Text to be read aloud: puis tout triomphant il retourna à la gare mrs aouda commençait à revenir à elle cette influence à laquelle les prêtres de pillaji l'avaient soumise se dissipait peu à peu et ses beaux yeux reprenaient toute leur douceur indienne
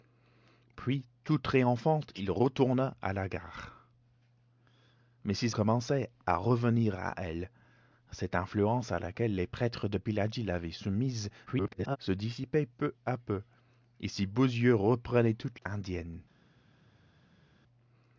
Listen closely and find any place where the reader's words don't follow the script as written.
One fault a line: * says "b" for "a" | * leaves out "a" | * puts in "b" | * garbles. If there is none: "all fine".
* leaves out "aouda"
* garbles
* leaves out "leur douceur"